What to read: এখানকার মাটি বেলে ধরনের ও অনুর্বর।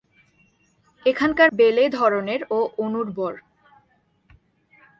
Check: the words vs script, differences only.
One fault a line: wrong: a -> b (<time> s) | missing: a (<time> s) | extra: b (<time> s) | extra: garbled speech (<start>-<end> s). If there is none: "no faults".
missing: মাটি (1.5 s)